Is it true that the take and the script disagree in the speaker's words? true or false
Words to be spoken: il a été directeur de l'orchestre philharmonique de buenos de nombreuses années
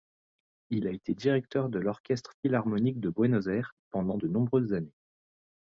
true